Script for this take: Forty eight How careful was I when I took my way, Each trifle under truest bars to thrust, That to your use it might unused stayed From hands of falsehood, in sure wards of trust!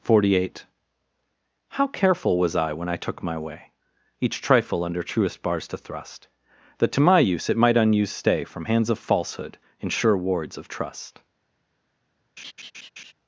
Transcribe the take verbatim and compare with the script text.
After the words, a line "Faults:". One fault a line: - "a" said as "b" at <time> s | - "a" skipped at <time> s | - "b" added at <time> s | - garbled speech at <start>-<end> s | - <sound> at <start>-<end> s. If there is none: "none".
Forty eight How careful was I when I took my way, Each trifle under truest bars to thrust, That to my use it might unused stay From hands of falsehood, in sure wards of trust!
Faults:
- "your" said as "my" at 7.0 s
- "stayed" said as "stay" at 8.1 s
- laugh at 12.4-13.1 s